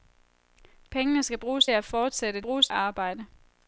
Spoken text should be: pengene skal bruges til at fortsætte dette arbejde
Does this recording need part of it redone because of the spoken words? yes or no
yes